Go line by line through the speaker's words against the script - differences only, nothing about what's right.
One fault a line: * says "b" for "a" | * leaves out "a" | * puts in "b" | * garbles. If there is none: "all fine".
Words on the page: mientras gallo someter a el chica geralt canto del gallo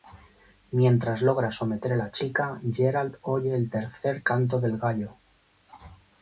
* says "logra" for "gallo"
* says "la" for "el"
* puts in "oye el tercer"